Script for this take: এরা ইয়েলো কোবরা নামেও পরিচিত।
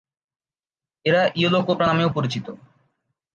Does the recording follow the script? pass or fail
pass